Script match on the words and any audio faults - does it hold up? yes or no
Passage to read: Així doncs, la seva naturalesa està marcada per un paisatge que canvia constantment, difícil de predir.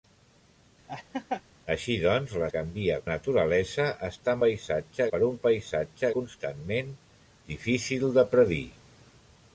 no